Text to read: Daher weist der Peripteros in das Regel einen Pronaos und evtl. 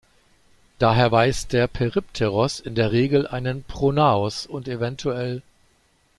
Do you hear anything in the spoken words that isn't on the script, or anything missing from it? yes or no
yes